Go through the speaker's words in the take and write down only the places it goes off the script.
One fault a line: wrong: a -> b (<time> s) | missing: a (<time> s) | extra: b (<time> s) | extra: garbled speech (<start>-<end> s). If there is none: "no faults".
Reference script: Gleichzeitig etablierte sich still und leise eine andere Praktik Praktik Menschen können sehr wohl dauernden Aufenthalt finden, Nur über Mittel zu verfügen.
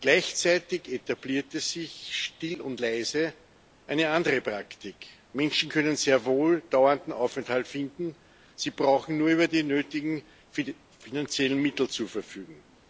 missing: Praktik (5.1 s)
extra: Sie brauchen (8.6 s)
extra: die nötigen finanziellen (9.5 s)